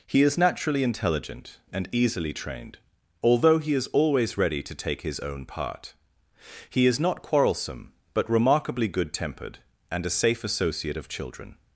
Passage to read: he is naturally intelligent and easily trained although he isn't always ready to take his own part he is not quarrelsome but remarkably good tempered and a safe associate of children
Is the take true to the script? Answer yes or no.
no